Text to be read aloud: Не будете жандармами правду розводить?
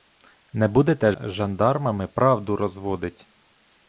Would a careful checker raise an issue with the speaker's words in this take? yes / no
no